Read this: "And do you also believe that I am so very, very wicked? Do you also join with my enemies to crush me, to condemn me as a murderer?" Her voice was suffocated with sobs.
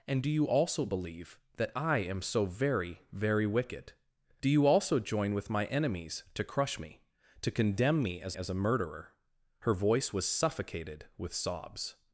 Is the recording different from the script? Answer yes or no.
yes